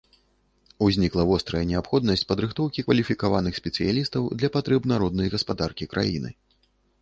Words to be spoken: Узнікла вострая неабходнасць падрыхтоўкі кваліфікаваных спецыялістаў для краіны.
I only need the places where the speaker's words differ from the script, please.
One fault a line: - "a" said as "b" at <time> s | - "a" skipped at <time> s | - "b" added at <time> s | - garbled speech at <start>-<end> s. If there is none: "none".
- "патрэб народнай гаспадаркі" added at 4.6 s